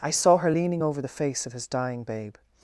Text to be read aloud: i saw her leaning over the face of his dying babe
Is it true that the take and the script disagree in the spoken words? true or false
false